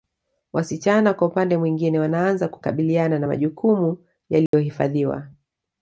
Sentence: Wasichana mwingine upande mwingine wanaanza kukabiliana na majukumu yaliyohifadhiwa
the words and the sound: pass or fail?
fail